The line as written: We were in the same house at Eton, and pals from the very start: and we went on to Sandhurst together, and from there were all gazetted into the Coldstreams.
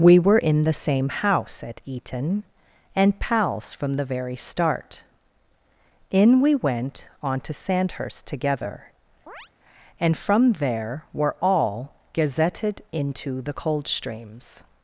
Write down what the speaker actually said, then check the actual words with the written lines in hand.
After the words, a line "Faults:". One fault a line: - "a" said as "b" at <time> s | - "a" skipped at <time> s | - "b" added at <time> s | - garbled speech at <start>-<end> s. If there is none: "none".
We were in the same house at Eton, and pals from the very start: in we went on to Sandhurst together, and from there were all gazetted into the Coldstreams.
Faults:
- "and" said as "in" at 6.1 s